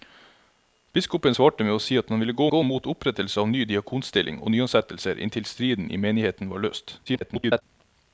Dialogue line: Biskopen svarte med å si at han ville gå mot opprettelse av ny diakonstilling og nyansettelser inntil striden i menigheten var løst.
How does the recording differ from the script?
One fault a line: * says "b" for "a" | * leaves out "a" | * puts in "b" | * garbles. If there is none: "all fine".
* puts in "gå"
* garbles